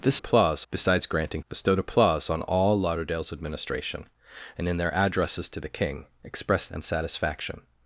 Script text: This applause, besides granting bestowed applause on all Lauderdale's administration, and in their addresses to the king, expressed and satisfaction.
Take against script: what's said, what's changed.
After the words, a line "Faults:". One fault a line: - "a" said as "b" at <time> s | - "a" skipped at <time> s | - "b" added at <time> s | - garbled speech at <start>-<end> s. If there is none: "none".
This applause, besides granting bestowed applause on all Lauderdale's administration, and in their addresses to the king, expressed and satisfaction.
Faults:
none